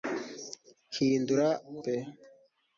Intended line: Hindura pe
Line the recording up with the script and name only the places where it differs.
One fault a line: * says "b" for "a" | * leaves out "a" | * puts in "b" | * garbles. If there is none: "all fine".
all fine